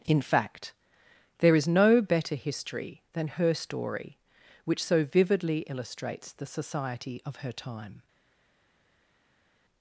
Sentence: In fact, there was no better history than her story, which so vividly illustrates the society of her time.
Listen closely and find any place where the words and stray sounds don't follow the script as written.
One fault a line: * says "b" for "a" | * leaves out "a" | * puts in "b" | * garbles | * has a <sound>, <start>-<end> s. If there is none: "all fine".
* says "is" for "was"